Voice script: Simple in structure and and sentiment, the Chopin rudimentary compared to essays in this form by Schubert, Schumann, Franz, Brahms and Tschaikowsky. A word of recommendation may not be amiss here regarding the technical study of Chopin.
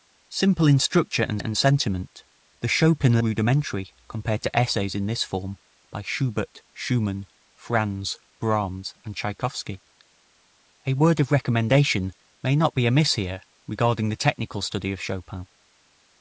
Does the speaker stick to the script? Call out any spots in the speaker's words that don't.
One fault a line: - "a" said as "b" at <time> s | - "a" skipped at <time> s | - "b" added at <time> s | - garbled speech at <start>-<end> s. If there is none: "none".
none